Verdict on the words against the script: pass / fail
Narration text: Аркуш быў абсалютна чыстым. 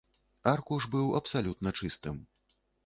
pass